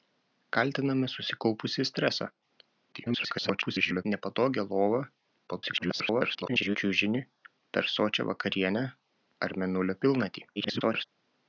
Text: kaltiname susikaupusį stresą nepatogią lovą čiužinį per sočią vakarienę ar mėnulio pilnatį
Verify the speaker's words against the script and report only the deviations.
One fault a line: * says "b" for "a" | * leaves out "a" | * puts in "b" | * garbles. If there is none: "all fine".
* garbles
* garbles
* garbles